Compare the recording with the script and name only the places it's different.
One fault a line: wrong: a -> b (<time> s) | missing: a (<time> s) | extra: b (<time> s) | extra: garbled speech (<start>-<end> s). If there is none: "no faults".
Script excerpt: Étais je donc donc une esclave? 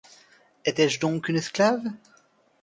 missing: donc (1.3 s)